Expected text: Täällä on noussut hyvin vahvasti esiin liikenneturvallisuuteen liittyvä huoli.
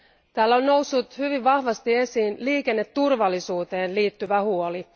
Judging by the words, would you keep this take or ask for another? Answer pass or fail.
pass